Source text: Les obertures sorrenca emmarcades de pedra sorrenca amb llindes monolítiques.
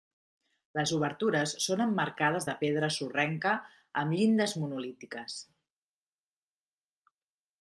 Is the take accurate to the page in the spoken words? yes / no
no